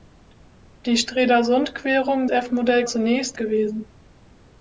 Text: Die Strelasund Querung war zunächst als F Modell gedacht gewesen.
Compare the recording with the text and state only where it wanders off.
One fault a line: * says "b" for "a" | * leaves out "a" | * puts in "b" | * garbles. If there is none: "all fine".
* leaves out "war zunächst als"
* says "zunächst" for "gedacht"